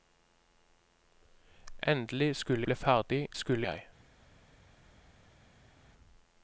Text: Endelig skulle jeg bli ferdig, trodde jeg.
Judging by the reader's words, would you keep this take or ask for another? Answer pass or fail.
fail